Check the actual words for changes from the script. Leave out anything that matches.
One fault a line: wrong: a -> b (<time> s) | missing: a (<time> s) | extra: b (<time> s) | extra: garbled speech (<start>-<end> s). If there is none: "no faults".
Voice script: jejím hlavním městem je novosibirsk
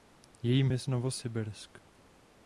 missing: hlavním městem (0.7 s)